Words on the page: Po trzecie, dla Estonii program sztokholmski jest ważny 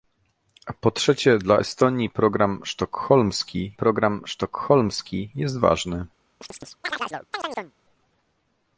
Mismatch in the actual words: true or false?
true